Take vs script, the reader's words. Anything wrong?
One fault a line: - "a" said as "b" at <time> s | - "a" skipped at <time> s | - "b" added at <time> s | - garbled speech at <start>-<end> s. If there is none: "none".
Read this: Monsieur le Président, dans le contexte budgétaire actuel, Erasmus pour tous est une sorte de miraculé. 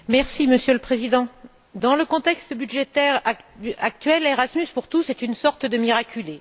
none